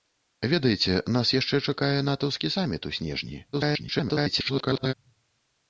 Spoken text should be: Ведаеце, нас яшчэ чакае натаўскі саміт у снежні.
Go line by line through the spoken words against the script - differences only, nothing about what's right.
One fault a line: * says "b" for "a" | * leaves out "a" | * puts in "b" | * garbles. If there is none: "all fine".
* garbles